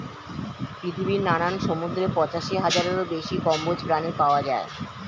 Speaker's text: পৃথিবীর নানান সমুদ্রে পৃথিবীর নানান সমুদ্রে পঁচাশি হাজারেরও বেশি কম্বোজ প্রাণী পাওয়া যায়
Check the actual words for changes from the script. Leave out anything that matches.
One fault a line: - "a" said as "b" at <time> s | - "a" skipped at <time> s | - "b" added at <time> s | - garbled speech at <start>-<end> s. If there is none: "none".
- "পৃথিবীর নানান সমুদ্রে" skipped at 2.0 s